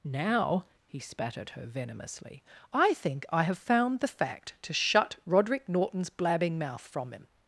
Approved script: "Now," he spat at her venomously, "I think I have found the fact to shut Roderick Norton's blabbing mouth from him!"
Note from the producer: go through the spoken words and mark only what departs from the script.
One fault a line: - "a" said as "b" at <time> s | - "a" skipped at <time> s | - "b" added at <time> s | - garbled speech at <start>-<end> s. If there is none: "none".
none